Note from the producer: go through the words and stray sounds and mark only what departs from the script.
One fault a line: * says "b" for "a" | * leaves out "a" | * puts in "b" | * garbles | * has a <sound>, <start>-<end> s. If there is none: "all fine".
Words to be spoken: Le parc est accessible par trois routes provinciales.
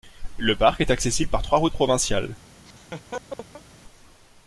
* has a laugh, 2.7-3.6 s